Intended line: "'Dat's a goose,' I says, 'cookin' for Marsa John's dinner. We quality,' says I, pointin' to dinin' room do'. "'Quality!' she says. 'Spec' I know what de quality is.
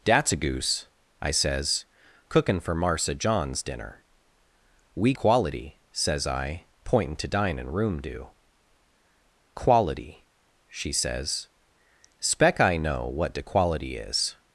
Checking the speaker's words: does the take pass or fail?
pass